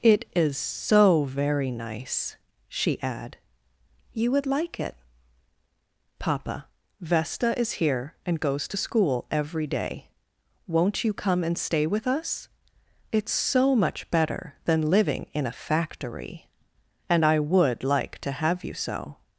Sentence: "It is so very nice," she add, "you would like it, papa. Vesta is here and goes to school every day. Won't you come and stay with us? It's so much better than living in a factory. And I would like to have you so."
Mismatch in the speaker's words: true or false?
false